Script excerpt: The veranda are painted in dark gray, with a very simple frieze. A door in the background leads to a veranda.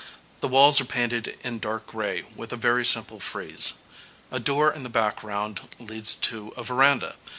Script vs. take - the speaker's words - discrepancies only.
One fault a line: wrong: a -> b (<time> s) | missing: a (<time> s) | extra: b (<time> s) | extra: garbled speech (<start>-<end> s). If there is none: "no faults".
wrong: veranda -> walls (0.5 s)